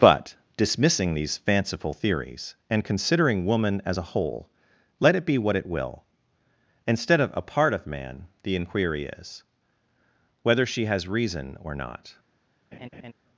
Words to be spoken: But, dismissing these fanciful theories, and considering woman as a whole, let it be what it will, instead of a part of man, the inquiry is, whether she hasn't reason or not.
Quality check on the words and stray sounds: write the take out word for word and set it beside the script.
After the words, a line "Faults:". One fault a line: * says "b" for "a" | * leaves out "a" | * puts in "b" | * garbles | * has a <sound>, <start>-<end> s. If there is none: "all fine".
But, dismissing these fanciful theories, and considering woman as a whole, let it be what it will, instead of a part of man, the inquiry is, whether she has reason or not.
Faults:
* says "has" for "hasn't"
* has a laugh, 12.7-13.1 s